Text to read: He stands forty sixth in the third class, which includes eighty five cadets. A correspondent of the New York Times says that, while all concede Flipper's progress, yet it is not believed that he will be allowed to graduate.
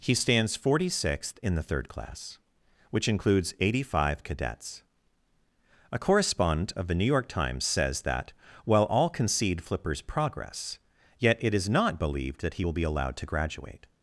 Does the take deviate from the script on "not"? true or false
false